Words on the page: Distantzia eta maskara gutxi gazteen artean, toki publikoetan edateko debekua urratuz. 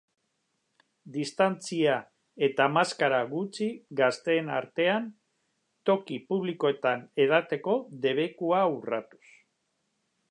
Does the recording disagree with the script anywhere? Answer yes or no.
no